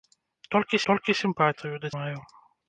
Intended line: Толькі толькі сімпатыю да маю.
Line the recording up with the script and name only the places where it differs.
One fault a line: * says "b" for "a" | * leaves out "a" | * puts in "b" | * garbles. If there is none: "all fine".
all fine